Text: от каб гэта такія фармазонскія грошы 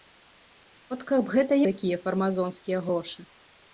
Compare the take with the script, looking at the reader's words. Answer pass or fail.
pass